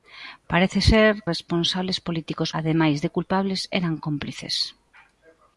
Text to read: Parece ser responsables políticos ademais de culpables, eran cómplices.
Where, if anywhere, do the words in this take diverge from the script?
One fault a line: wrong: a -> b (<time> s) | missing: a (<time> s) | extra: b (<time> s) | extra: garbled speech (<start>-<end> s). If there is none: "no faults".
no faults